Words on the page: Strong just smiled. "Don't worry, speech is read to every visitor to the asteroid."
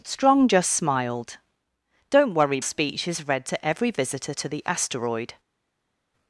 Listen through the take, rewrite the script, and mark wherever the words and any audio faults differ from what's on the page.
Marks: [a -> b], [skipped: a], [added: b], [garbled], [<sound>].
Strong just smiled. "Don't worry, speech is read to every visitor to the asteroid."